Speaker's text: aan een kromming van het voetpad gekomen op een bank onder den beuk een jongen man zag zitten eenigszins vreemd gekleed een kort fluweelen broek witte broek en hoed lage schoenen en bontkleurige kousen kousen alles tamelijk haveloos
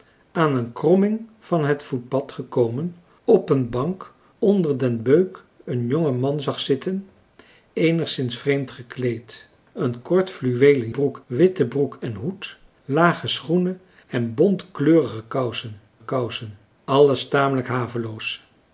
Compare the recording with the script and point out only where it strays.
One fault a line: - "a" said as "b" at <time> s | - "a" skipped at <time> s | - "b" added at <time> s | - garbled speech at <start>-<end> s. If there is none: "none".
none